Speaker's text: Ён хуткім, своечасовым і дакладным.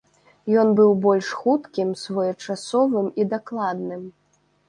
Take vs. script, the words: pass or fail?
fail